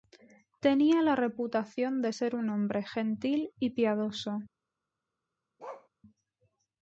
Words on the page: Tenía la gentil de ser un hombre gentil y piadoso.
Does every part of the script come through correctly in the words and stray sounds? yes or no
no